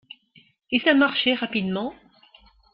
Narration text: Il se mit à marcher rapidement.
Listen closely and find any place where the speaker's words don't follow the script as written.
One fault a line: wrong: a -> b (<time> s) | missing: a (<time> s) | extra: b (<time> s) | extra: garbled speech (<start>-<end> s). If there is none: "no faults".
missing: se mit (0.8 s)